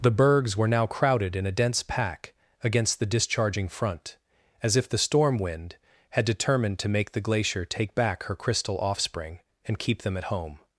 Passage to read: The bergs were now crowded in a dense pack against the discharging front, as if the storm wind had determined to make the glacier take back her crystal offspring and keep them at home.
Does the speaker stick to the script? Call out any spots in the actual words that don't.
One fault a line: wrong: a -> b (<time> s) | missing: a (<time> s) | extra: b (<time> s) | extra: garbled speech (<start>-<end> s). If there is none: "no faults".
no faults